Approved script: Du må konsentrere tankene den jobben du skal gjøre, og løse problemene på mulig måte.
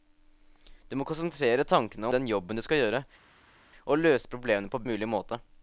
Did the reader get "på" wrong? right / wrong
right